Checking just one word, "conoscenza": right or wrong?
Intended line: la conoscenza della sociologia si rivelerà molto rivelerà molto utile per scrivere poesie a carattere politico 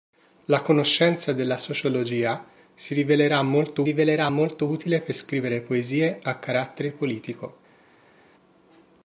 right